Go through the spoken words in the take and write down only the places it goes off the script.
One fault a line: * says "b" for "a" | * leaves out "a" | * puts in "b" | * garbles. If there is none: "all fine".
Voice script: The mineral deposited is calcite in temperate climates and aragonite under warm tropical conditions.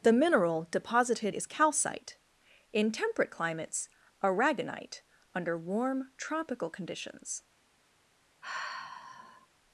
* leaves out "and"